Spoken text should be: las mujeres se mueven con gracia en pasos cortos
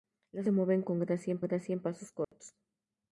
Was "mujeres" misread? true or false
true